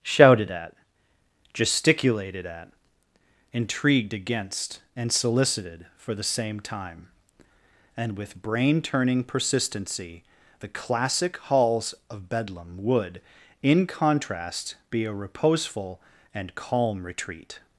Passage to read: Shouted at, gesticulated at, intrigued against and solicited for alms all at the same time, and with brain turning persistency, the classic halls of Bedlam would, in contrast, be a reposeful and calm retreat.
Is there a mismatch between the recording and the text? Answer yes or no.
yes